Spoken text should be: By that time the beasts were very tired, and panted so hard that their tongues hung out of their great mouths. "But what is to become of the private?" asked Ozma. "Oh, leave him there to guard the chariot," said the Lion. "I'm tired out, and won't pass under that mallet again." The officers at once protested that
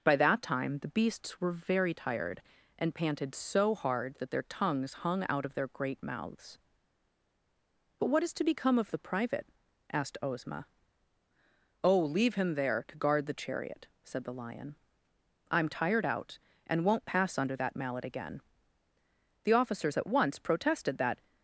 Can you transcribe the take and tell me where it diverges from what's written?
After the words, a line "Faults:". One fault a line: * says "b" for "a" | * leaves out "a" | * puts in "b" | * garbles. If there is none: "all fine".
By that time the beasts were very tired, and panted so hard that their tongues hung out of their great mouths. "But what is to become of the private?" asked Ozma. "Oh, leave him there to guard the chariot," said the Lion. "I'm tired out, and won't pass under that mallet again." The officers at once protested that
Faults:
all fine